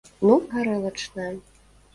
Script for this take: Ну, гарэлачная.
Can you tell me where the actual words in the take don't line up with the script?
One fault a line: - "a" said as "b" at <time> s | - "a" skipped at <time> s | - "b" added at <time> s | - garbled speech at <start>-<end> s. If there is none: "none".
none